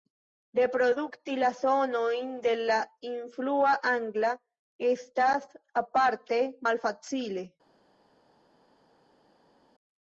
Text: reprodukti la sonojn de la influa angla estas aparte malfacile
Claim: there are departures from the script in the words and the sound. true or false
false